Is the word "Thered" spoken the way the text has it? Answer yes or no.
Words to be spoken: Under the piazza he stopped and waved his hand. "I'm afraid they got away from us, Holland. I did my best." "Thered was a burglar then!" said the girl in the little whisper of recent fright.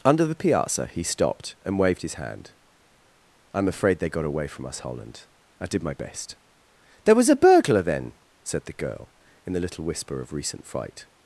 no